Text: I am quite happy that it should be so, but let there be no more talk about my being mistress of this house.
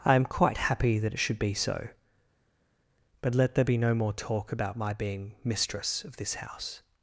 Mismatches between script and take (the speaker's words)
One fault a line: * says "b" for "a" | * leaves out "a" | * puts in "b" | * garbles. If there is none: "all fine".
all fine